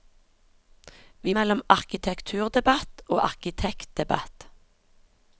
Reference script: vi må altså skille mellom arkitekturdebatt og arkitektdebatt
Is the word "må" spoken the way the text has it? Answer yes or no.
no